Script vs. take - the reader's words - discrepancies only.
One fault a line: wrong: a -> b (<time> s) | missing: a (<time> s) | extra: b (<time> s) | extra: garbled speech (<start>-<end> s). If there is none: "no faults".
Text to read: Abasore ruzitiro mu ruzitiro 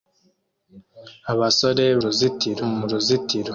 no faults